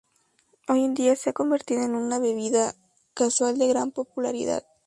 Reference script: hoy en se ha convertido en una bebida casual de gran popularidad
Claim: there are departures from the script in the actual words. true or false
true